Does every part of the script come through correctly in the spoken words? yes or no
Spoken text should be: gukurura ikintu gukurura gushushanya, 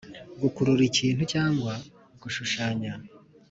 no